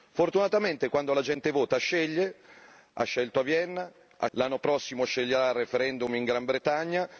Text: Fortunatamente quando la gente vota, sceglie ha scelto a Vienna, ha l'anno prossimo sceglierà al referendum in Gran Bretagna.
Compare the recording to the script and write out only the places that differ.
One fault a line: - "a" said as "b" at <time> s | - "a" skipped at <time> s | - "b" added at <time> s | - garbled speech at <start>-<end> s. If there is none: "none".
none